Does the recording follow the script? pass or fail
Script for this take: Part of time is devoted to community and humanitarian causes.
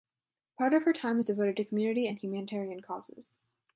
fail